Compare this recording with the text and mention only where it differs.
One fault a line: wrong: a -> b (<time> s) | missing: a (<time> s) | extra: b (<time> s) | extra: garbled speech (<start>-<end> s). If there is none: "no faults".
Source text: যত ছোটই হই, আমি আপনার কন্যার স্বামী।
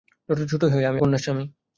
missing: আপনার (1.0 s)